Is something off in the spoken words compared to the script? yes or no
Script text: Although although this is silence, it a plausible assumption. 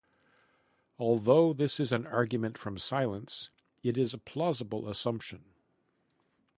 yes